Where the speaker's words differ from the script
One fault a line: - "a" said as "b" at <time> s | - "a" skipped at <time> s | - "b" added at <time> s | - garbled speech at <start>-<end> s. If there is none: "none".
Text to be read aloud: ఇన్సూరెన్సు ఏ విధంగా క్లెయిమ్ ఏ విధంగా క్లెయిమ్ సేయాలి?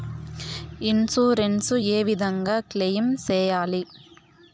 - "ఏ విధంగా క్లెయిమ్" skipped at 3.1 s